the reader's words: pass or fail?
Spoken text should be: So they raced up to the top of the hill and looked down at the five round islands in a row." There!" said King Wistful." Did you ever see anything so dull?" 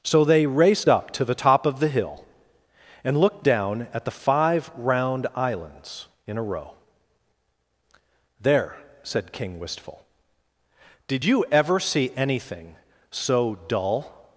pass